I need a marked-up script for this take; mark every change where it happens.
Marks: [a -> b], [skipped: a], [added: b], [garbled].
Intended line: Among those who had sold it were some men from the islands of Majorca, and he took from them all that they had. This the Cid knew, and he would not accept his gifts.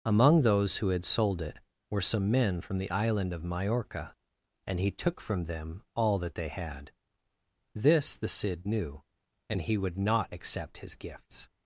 Among those who had sold it were some men from the [islands -> island] of Majorca, and he took from them all that they had. This the Cid knew, and he would not accept his gifts.